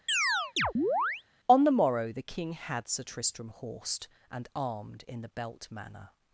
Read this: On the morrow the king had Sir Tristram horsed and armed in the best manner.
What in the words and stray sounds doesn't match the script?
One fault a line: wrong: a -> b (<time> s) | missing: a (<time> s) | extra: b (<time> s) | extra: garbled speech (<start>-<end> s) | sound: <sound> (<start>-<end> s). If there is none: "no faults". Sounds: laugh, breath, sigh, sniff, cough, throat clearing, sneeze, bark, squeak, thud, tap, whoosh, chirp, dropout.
sound: chirp (0.1-1.2 s)
wrong: best -> belt (5.3 s)